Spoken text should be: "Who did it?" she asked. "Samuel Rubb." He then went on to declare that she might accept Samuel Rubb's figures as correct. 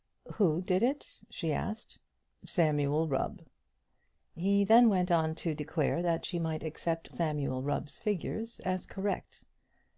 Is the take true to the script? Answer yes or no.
yes